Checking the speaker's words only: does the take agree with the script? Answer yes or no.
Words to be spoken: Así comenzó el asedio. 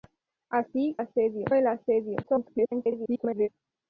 no